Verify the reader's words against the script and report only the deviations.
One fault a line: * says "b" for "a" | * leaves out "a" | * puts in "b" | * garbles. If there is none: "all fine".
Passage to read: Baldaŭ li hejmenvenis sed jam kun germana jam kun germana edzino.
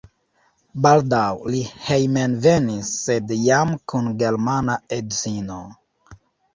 * leaves out "jam kun germana"